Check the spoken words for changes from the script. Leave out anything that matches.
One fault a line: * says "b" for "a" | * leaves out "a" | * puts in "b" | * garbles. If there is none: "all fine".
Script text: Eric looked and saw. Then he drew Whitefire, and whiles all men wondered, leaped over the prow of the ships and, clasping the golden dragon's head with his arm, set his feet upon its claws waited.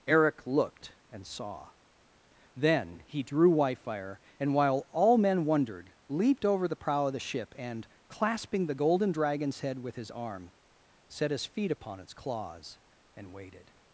* says "while" for "whiles"
* says "ship" for "ships"
* puts in "and"